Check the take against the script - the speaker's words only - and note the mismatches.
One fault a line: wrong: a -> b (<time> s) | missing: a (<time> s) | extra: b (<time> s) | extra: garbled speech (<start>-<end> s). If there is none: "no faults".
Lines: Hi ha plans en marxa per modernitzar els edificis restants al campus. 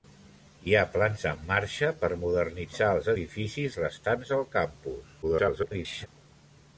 extra: garbled speech (5.2-6.1 s)